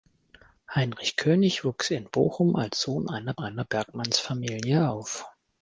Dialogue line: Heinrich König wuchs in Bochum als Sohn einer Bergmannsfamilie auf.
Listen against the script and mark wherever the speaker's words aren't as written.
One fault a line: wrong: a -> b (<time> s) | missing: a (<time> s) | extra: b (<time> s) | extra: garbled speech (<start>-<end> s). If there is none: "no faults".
extra: einer (3.4 s)